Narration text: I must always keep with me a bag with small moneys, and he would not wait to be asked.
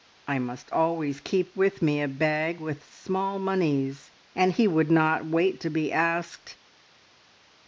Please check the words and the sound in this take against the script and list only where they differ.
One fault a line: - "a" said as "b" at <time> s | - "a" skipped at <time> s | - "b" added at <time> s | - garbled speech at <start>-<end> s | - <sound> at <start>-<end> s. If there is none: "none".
none